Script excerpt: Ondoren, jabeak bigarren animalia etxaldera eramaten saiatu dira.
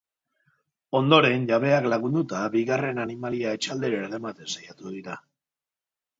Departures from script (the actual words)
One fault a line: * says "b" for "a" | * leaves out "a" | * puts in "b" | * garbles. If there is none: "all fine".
* puts in "lagunduta"